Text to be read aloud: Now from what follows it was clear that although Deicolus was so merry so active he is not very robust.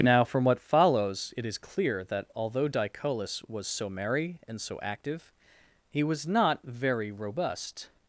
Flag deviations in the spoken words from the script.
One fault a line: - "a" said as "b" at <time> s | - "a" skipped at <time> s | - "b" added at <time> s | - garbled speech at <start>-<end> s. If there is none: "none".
- "was" said as "is" at 1.4 s
- "and" added at 4.5 s
- "is" said as "was" at 6.0 s